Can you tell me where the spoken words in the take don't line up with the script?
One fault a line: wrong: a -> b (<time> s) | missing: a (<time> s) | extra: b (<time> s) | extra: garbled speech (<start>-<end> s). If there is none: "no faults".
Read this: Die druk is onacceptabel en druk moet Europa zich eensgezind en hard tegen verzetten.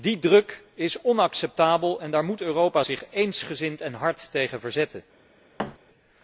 wrong: druk -> daar (2.1 s)